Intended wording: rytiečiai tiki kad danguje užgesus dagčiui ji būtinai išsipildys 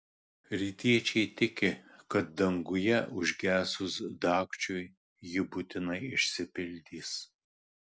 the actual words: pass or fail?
pass